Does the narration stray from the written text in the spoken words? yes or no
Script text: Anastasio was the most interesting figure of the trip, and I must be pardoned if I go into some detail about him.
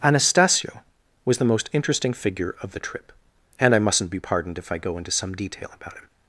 yes